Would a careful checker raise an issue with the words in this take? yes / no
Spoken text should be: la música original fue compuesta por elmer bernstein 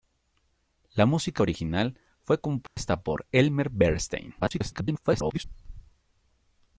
yes